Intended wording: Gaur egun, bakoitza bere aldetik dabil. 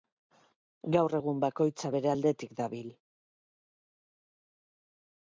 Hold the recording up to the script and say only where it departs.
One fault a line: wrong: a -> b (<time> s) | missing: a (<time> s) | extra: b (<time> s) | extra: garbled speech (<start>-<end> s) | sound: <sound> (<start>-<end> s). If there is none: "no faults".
no faults